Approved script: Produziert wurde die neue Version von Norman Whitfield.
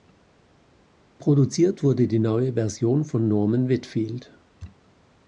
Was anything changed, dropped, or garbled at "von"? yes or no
no